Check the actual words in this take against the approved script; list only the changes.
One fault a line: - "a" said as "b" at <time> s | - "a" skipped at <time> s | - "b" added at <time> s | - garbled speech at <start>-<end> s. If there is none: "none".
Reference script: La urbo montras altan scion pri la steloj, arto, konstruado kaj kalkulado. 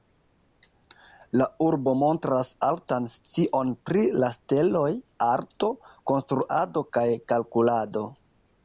none